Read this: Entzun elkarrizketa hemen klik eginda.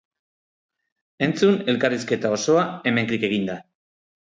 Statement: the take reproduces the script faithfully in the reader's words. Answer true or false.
false